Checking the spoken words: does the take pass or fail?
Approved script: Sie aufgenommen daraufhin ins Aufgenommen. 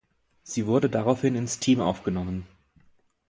fail